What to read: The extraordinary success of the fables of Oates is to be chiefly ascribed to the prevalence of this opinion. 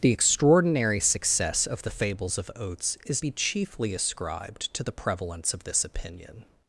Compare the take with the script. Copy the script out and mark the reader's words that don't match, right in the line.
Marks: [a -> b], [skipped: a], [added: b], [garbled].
The extraordinary success of the fables of Oates is [skipped: to] be chiefly ascribed to the prevalence of this opinion.